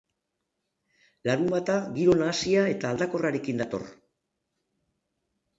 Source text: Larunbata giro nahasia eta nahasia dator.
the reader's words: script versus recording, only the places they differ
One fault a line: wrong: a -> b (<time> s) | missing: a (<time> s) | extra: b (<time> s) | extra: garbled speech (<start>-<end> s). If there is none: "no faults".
wrong: nahasia -> aldakorrarekin (2.9 s)